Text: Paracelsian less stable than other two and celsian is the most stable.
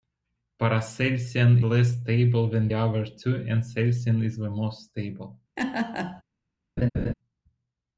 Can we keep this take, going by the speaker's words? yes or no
yes